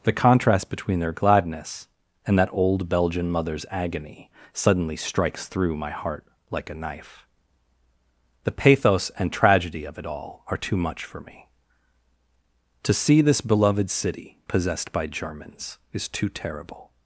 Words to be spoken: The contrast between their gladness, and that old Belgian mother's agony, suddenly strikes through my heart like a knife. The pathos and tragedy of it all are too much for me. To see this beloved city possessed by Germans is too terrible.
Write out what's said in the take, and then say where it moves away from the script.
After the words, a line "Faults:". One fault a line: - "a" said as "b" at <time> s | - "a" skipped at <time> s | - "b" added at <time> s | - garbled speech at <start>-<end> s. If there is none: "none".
The contrast between their gladness, and that old Belgian mother's agony, suddenly strikes through my heart like a knife. The pathos and tragedy of it all are too much for me. To see this beloved city possessed by Germans is too terrible.
Faults:
none